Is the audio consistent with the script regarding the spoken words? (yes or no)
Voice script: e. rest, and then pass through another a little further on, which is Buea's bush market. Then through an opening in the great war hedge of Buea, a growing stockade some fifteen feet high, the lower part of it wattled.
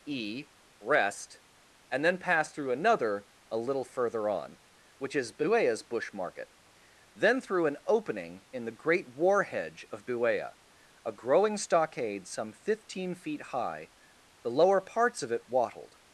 no